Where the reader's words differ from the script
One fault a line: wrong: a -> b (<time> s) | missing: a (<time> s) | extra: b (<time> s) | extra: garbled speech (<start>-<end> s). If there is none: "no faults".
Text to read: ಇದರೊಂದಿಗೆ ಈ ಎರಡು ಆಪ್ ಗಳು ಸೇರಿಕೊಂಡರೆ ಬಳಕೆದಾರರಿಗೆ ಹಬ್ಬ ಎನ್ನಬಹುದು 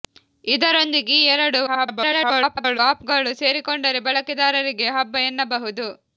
extra: garbled speech (1.7-2.8 s)